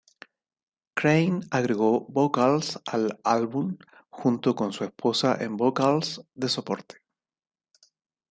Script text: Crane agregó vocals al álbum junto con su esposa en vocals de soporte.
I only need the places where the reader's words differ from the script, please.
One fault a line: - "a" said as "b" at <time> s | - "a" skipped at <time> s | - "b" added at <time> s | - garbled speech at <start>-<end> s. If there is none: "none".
none